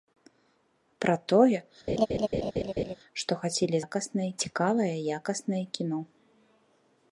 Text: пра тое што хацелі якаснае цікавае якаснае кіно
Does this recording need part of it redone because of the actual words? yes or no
no